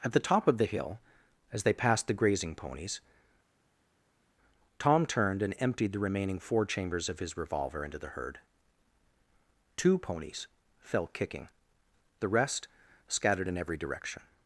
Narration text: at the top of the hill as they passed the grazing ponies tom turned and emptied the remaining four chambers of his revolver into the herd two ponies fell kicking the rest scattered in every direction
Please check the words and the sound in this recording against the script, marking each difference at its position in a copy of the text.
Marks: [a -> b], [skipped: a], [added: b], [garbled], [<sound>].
at the top of the hill as they passed the grazing ponies tom turned and emptied the remaining four chambers of his revolver into the herd two ponies fell kicking the rest scattered in every direction